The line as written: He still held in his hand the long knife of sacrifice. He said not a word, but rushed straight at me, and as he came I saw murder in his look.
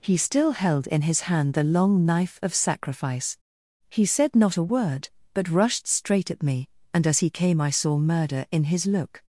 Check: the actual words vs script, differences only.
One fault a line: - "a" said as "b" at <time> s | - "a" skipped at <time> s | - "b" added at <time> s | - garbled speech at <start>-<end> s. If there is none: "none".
none